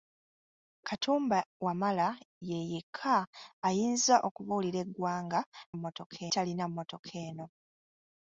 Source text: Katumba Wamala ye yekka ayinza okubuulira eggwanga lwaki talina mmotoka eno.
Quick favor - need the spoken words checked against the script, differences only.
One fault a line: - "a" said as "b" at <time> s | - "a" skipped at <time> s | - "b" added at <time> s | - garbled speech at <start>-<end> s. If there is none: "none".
- "lwaki" said as "mmotoka" at 5.8 s